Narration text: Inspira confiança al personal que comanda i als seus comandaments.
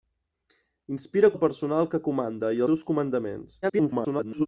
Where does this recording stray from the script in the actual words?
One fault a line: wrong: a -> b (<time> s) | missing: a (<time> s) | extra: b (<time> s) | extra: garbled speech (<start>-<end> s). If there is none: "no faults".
missing: confiança (1.3 s)
missing: als (2.6 s)
extra: garbled speech (3.6-4.5 s)